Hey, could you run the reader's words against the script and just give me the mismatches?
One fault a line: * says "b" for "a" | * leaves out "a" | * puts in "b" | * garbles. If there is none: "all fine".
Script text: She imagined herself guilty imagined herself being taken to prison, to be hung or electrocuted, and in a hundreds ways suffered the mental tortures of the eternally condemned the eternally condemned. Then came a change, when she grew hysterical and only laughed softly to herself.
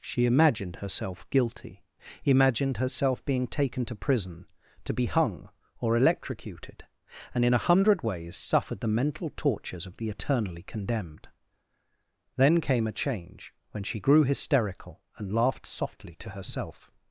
* says "hundred" for "hundreds"
* leaves out "the eternally condemned"
* leaves out "only"